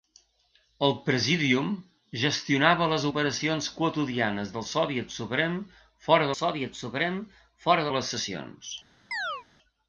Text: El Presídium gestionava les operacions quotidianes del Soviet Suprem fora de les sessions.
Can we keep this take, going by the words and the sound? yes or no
no